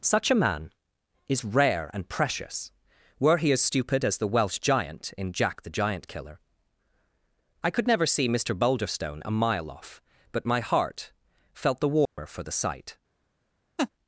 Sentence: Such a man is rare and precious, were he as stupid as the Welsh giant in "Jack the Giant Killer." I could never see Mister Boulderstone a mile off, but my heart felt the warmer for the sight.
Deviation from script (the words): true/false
false